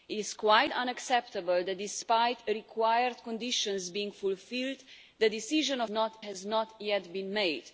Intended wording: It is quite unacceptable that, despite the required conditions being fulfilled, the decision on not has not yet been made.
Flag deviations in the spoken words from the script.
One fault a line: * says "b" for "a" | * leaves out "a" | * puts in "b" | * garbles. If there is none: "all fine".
all fine